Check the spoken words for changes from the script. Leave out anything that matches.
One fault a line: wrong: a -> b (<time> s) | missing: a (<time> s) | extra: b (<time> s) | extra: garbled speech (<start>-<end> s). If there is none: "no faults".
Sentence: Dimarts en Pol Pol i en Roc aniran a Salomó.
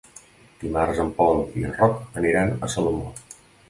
missing: Pol (1.4 s)